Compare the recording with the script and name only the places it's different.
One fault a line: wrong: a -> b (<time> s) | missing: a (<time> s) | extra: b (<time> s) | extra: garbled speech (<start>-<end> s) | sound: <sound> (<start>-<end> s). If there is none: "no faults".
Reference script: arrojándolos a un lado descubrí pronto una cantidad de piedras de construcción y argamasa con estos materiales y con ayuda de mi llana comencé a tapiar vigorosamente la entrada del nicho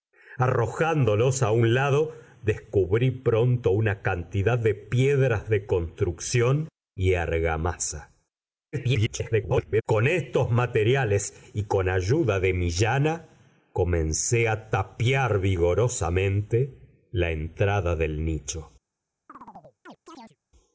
extra: garbled speech (8.7-9.8 s)
sound: chirp (19.3-20.4 s)